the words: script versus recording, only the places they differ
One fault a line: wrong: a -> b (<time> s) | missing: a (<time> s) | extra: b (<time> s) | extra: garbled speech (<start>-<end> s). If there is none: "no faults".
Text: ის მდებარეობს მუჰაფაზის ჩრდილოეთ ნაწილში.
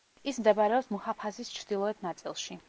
no faults